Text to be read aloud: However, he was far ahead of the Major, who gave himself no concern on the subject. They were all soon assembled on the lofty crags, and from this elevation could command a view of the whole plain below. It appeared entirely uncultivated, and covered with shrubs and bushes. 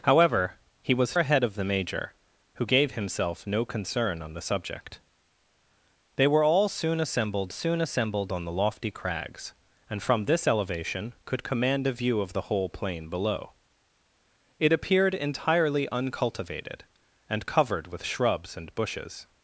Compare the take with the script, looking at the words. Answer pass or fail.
fail